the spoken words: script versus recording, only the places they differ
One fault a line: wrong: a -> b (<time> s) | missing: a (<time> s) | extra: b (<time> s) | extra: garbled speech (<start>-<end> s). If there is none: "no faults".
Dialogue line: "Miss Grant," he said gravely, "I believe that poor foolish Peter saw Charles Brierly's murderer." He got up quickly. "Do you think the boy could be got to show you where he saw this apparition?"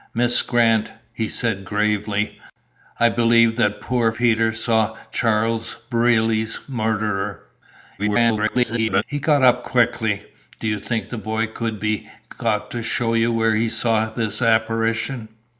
missing: foolish (4.1 s)
extra: garbled speech (8.0-9.0 s)